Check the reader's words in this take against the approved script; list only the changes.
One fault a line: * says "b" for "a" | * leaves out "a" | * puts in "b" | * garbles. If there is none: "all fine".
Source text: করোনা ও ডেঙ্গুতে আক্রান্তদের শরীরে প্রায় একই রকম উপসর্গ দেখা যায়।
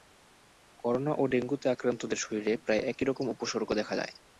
all fine